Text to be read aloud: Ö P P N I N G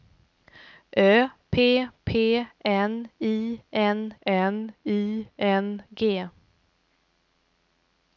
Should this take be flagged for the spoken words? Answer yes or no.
yes